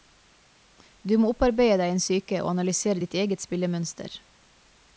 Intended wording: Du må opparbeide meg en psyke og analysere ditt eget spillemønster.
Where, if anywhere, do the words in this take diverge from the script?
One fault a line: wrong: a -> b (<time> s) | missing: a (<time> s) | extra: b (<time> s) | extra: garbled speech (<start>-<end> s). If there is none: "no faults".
wrong: meg -> deg (1.8 s)